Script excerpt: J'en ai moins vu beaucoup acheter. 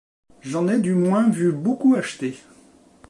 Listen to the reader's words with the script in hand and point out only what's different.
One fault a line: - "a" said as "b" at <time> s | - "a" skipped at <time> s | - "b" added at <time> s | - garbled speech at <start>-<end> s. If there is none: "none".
- "du" added at 0.8 s